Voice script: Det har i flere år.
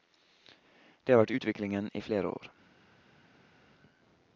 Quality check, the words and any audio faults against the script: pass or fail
fail